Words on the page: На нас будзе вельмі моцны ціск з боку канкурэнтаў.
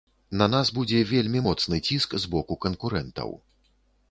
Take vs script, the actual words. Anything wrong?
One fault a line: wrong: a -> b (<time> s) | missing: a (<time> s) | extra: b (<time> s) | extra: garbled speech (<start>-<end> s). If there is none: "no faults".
no faults